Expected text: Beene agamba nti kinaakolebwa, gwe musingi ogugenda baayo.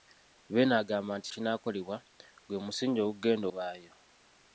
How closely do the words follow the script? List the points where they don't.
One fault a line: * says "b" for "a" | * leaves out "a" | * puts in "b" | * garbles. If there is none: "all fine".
all fine